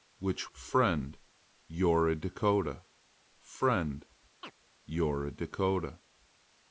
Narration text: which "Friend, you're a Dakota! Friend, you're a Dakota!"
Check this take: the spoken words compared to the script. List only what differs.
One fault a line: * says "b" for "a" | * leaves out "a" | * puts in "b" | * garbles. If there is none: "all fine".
all fine